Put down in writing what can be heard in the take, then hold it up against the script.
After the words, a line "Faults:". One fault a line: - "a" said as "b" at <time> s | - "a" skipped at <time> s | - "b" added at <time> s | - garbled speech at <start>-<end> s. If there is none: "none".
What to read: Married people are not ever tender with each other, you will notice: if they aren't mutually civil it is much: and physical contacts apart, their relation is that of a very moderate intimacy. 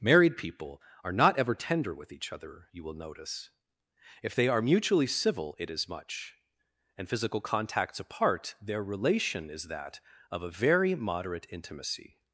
Married people are not ever tender with each other, you will notice: if they are mutually civil it is much: and physical contacts apart, their relation is that of a very moderate intimacy.
Faults:
- "aren't" said as "are" at 4.5 s